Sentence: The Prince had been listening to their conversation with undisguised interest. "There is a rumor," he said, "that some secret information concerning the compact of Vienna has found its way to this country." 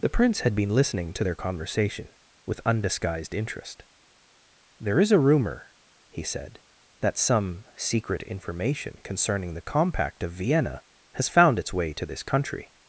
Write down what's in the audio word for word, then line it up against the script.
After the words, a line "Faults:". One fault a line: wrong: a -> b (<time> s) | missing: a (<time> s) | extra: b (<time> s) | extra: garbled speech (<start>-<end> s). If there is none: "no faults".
The Prince had been listening to their conversation with undisguised interest. "There is a rumor," he said, "that some secret information concerning the compact of Vienna has found its way to this country."
Faults:
no faults